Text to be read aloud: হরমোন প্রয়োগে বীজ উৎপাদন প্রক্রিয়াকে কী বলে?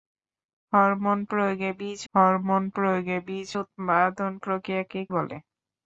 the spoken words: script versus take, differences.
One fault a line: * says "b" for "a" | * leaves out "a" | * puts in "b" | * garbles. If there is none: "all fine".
* puts in "হরমোন প্রয়োগে বীজ"
* leaves out "কী"